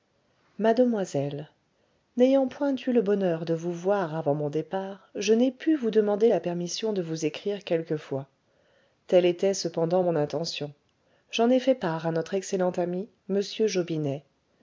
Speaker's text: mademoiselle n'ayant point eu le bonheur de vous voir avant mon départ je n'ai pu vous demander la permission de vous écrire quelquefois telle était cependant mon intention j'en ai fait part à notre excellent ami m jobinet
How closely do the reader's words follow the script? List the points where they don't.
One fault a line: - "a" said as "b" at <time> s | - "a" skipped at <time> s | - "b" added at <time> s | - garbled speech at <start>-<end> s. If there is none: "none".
none